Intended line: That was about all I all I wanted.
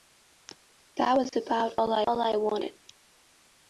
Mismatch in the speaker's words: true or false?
false